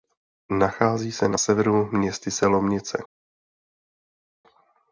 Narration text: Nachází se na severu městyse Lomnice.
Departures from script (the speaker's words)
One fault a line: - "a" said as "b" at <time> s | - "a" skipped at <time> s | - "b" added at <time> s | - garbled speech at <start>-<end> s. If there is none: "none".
none